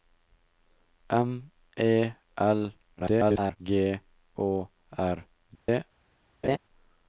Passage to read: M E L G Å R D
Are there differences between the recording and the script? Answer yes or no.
yes